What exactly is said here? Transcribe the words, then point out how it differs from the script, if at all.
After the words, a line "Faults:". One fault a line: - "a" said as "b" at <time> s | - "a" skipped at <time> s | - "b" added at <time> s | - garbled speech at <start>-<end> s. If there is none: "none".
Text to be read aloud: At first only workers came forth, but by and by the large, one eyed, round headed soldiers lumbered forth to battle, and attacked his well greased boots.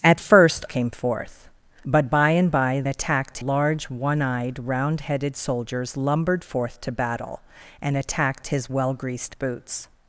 At first came forth, but by and by attacked large, one eyed, round headed soldiers lumbered forth to battle, and attacked his well greased boots.
Faults:
- "only workers" skipped at 0.7 s
- "the" said as "attacked" at 2.9 s